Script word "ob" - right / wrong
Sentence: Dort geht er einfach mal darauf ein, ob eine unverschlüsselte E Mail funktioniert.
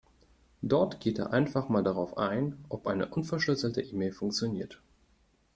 right